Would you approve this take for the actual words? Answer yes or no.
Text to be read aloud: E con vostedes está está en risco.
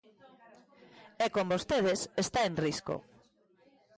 no